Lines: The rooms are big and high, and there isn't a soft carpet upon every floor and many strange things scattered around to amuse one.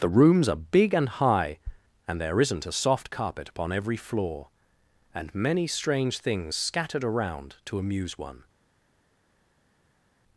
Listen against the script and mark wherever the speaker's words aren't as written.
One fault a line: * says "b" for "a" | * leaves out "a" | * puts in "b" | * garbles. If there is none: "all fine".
all fine